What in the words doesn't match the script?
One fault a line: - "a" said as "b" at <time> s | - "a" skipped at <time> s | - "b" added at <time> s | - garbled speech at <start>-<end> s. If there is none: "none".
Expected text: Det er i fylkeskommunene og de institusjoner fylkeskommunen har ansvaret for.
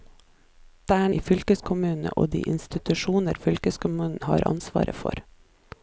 none